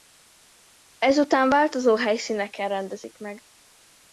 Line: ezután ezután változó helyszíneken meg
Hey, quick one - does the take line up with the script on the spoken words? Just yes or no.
no